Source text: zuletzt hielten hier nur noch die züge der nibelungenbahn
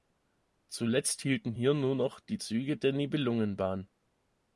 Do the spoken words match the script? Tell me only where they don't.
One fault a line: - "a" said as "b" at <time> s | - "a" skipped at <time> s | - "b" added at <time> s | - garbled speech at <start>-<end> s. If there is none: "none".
none